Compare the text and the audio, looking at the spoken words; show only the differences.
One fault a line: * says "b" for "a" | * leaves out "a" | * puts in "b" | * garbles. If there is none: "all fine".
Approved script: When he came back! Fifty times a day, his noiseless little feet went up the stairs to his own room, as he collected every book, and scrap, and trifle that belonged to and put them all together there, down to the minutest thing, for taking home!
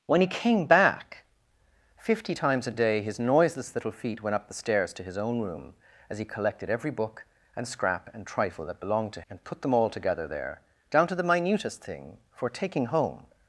all fine